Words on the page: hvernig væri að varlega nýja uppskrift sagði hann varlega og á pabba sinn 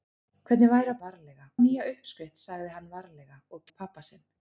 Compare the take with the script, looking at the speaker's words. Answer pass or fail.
pass